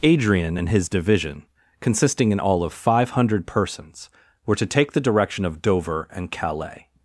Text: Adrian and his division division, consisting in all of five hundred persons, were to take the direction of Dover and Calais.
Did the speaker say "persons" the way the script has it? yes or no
yes